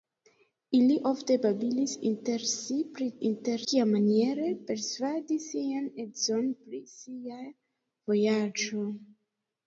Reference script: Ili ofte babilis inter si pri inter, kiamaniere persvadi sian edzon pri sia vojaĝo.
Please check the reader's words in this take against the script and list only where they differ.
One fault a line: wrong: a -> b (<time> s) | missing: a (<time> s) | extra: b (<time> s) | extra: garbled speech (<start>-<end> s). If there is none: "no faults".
no faults